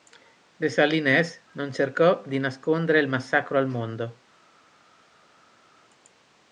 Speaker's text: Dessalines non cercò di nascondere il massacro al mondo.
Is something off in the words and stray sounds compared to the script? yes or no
no